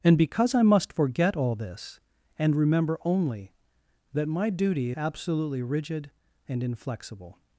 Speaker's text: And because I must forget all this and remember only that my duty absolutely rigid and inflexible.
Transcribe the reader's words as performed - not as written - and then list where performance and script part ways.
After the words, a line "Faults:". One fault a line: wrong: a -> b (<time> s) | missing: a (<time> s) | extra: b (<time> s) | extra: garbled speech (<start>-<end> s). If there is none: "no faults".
And because I must forget all this and remember only that my duty absolutely rigid and inflexible.
Faults:
no faults